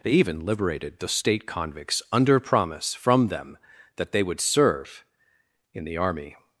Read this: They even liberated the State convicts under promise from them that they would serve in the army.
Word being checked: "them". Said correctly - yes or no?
yes